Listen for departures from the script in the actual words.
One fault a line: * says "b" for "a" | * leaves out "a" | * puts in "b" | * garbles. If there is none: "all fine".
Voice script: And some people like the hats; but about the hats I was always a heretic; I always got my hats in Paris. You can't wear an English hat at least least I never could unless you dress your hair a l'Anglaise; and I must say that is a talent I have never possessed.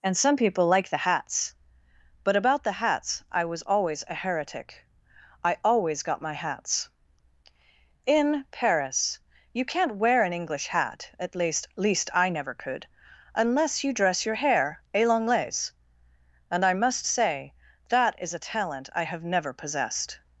all fine